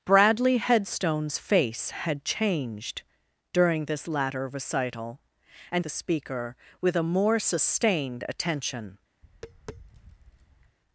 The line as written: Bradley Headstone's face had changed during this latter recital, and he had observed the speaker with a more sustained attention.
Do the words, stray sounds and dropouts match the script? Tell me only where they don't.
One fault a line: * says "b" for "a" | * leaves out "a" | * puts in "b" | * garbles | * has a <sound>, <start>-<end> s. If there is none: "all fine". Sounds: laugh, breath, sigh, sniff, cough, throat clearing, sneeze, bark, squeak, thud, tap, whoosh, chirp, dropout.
* leaves out "he had observed"
* has a tap, 9.2-10.8 s